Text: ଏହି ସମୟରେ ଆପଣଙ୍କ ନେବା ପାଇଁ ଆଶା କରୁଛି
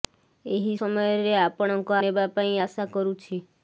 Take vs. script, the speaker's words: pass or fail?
pass